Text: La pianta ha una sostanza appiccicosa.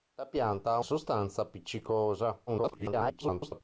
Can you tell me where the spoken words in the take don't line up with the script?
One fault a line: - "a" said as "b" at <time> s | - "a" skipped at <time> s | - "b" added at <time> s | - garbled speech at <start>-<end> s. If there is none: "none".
- "una" skipped at 0.8 s
- garbled speech at 2.5-3.6 s